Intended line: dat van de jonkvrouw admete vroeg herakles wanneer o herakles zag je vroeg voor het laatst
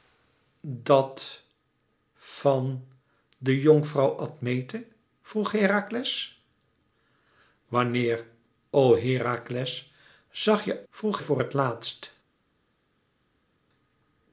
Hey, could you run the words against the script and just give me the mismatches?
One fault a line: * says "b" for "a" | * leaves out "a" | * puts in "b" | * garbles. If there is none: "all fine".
all fine